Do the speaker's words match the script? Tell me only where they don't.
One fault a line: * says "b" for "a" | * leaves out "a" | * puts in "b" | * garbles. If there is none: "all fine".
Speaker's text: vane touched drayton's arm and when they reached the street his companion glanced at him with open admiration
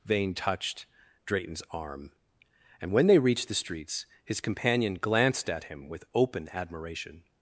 * says "streets" for "street"